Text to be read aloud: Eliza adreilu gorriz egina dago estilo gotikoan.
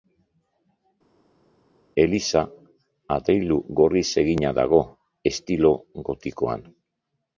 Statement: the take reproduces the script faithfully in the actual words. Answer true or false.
true